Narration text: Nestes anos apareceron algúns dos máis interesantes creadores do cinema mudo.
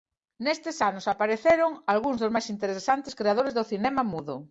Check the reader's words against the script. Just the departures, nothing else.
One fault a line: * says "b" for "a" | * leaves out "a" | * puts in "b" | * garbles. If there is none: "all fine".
all fine